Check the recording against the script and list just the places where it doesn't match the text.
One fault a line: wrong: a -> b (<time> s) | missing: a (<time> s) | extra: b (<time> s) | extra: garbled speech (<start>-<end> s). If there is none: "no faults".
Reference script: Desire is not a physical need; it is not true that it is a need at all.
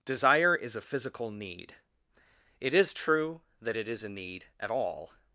missing: not (0.8 s)
missing: not (3.0 s)